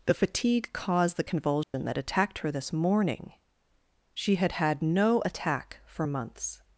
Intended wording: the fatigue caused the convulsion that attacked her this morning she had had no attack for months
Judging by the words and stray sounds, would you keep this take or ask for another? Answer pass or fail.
fail